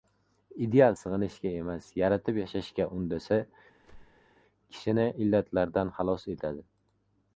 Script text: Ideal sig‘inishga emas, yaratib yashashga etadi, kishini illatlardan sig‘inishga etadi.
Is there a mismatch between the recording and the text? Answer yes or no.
yes